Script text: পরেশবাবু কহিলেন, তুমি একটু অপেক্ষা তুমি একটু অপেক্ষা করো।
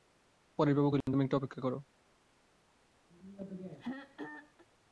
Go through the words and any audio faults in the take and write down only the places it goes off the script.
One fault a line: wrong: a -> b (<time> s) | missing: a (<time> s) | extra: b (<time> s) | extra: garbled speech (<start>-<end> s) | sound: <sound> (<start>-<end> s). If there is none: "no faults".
sound: dropout (1.0-1.1 s)
missing: তুমি একটু অপেক্ষা (1.6 s)
sound: throat clearing (3.1-4.7 s)